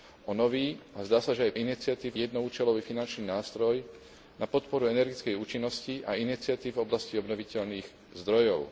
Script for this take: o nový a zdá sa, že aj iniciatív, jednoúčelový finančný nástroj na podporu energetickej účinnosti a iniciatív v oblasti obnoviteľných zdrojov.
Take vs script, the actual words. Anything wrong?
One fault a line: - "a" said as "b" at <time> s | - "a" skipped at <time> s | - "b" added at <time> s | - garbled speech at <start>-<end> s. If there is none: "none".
none